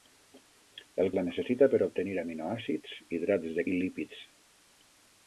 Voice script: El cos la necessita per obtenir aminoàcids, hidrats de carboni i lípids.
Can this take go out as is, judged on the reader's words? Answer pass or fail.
fail